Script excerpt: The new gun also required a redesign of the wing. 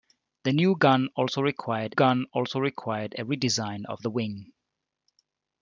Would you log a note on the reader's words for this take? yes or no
yes